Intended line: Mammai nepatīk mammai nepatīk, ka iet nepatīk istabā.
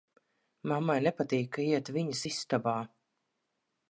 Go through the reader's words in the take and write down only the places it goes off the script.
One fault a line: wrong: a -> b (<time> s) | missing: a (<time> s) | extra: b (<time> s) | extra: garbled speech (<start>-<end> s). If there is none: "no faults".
missing: mammai nepatīk (1.5 s)
wrong: nepatīk -> viņas (2.0 s)